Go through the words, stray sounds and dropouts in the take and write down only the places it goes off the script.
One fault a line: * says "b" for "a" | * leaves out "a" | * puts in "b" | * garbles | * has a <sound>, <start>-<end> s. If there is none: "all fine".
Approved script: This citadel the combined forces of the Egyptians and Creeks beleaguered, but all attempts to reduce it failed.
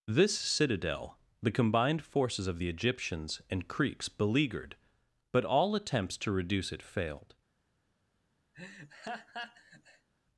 * has a laugh, 8.5-10.1 s